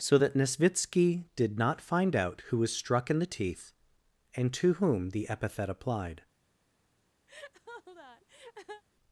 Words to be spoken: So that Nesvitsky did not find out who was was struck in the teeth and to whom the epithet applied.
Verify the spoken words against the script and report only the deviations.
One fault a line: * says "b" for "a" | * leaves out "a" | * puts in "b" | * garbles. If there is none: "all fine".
* leaves out "was"